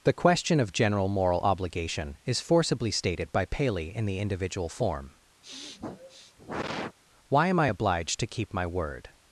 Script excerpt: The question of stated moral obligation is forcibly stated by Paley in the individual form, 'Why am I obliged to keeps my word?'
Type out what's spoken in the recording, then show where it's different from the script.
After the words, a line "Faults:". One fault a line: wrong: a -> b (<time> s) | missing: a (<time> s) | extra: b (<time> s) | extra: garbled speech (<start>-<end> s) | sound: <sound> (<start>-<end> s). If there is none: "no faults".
The question of general moral obligation is forcibly stated by Paley in the individual form, 'Why am I obliged to keep my word?'
Faults:
wrong: stated -> general (0.7 s)
sound: sniff (5.4-7.0 s)
wrong: keeps -> keep (8.3 s)